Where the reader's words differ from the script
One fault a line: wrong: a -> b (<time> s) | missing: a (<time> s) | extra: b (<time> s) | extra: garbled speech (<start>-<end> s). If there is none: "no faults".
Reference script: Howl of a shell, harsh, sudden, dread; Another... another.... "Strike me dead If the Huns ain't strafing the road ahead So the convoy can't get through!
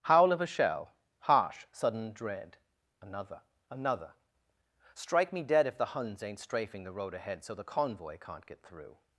no faults